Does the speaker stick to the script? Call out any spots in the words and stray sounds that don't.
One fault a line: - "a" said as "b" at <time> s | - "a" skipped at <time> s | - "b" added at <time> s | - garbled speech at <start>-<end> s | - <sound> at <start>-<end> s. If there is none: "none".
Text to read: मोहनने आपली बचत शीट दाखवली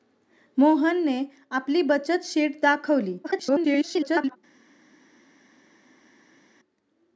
- garbled speech at 3.2-4.4 s